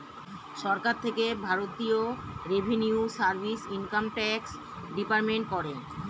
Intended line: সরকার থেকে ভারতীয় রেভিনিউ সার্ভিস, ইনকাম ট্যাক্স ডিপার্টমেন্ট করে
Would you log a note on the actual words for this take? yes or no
no